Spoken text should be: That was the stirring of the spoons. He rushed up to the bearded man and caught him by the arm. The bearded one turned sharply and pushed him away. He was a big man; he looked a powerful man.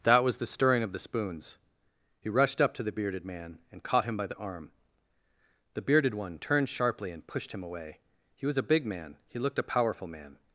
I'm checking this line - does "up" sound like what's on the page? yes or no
yes